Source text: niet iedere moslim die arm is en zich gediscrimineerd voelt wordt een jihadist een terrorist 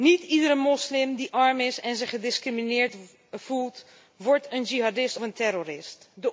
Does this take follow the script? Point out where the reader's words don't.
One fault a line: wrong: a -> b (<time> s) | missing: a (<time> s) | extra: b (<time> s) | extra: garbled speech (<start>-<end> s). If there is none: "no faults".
no faults